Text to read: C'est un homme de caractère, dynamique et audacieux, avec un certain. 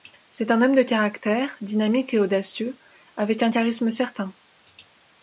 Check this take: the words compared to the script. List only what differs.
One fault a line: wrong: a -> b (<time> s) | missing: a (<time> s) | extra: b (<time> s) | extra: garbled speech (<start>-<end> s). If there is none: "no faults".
extra: charisme (3.5 s)